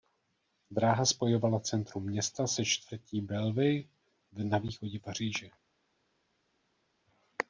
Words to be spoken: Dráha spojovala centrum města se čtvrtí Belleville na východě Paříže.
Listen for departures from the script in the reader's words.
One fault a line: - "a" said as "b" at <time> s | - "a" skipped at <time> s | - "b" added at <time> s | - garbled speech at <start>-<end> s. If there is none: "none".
none